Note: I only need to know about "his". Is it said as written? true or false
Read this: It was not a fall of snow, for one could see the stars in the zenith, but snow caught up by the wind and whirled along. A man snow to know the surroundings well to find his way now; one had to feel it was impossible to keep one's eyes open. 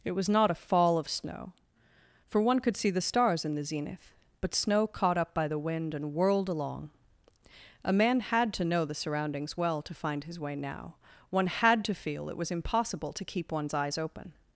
true